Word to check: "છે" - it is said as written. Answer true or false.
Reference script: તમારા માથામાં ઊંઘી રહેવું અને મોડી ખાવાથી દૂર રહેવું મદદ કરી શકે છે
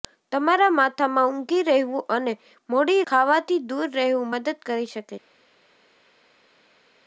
true